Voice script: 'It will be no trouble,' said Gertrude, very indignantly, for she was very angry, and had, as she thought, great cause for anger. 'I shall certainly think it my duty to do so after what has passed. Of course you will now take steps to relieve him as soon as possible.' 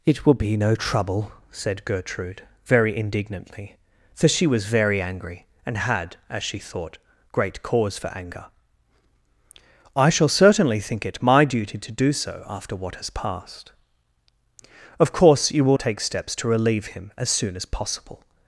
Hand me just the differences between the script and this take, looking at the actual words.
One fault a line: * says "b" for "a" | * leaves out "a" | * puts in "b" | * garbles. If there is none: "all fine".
* leaves out "now"